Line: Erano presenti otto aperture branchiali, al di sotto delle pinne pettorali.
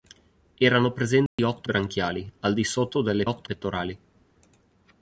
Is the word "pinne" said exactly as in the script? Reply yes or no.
no